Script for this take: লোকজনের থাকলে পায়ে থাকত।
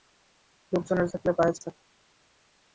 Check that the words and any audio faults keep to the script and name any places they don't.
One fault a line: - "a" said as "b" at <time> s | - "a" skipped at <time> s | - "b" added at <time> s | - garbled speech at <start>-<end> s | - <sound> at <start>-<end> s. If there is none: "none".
none